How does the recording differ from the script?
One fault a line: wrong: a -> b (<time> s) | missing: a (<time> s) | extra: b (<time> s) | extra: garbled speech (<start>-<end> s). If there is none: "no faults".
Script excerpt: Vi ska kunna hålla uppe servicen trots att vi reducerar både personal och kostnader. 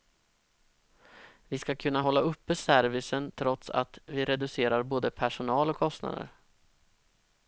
no faults